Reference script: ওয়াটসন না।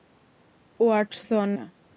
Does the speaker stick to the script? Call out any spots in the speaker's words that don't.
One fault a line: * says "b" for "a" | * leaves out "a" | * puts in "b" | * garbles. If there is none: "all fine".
all fine